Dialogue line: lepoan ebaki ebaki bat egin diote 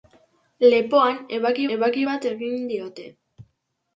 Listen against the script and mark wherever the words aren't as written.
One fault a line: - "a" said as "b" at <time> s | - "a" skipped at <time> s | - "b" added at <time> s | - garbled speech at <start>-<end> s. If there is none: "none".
none